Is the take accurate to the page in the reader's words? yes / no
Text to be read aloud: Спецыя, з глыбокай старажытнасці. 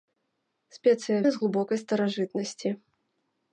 yes